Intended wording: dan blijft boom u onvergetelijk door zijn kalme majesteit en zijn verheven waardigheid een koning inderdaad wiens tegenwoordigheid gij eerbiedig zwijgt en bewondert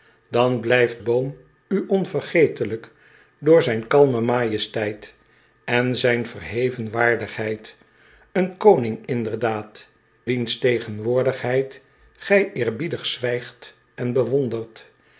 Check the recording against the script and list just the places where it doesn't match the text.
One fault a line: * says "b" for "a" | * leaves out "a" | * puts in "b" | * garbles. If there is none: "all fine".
all fine